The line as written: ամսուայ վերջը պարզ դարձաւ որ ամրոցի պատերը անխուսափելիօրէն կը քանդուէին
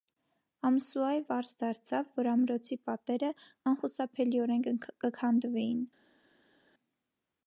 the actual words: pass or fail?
fail